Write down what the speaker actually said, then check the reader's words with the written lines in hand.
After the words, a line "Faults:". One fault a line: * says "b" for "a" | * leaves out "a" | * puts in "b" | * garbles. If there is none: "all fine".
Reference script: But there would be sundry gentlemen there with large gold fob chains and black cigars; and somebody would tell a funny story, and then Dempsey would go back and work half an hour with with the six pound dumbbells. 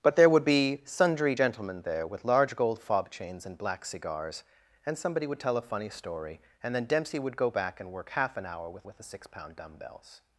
But there would be sundry gentlemen there with large gold fob chains and black cigars; and somebody would tell a funny story, and then Dempsey would go back and work half an hour with with the six pound dumbbells.
Faults:
all fine